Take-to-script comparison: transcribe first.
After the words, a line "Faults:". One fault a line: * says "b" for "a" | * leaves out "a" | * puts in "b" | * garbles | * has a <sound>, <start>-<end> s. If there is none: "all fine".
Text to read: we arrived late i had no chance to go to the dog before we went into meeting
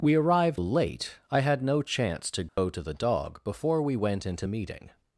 we arrived late i had no chance to go to the dog before we went into meeting
Faults:
* has a dropout, 2.5-2.6 s